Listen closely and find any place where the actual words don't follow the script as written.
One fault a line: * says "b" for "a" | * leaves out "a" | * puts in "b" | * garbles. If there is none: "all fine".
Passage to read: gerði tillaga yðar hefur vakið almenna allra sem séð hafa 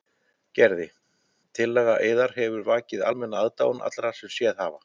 * puts in "aðdáun"